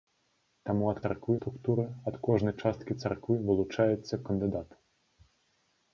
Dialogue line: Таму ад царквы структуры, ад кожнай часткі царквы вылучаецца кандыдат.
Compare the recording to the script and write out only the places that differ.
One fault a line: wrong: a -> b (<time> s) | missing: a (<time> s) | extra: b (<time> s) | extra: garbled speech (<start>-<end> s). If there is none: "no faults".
no faults